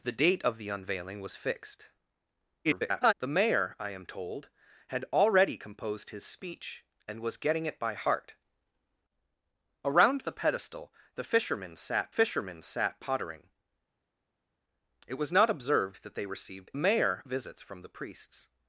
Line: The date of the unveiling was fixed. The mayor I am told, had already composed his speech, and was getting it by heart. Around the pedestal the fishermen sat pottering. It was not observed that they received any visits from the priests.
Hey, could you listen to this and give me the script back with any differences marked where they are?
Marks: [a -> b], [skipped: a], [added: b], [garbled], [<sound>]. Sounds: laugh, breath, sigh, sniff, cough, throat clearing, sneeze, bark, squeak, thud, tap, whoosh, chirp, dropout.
The date of the unveiling was fixed. [garbled] The mayor I am told, had already composed his speech, and was getting it by heart. Around the pedestal the fishermen sat [added: fishermen sat] pottering. It was not observed that they received [any -> mayor] visits from the priests.